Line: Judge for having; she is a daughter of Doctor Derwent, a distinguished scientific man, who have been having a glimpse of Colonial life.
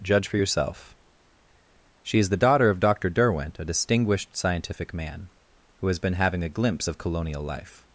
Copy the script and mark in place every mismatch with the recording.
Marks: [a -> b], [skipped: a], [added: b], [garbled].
Judge for [having; -> yourself] she is [a -> the] daughter of Doctor Derwent, a distinguished scientific man, who [have -> has] been having a glimpse of Colonial life.